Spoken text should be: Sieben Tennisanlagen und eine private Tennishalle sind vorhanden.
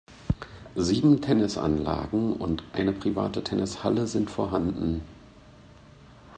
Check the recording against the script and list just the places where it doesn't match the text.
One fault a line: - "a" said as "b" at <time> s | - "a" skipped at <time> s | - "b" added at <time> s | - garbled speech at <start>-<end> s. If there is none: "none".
none